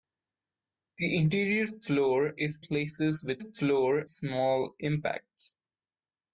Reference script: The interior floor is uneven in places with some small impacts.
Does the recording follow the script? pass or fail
fail